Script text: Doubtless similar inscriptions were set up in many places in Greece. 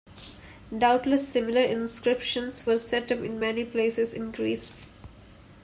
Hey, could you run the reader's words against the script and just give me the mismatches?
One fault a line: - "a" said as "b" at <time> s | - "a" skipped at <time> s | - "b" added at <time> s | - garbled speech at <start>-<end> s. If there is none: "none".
none